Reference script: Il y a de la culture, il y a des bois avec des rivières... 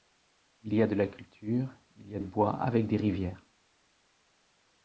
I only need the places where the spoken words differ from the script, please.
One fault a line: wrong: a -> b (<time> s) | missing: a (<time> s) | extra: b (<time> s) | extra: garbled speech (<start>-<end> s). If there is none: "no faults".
missing: des (2.2 s)